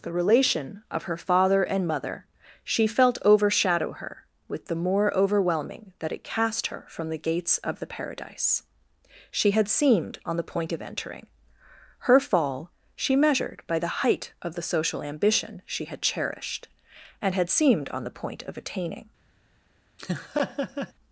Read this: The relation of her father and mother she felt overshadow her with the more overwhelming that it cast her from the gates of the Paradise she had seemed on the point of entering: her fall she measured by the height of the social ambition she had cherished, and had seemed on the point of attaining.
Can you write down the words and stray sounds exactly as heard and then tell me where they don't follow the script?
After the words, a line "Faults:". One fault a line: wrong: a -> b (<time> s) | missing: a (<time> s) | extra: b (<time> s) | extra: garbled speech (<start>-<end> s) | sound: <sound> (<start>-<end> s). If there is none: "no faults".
The relation of her father and mother she felt overshadow her with the more overwhelming that it cast her from the gates of the Paradise she had seemed on the point of entering: her fall she measured by the height of the social ambition she had cherished, and had seemed on the point of attaining.
Faults:
sound: laugh (20.0-20.9 s)